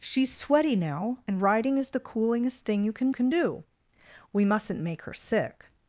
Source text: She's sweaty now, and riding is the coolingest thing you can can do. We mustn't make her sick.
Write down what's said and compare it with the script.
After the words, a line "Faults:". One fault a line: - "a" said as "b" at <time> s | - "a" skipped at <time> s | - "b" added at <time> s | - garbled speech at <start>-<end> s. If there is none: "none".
She's sweaty now, and riding is the coolingest thing you can can do. We mustn't make her sick.
Faults:
none